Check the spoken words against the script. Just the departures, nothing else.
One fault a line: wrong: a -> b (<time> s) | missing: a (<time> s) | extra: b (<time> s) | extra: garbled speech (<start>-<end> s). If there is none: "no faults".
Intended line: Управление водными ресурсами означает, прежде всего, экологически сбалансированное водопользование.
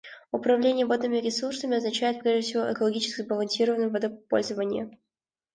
no faults